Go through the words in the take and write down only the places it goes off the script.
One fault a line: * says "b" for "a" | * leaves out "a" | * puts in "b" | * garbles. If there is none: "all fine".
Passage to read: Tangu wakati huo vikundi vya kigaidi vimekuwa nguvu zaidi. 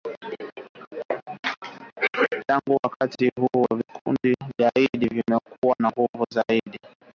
* puts in "na"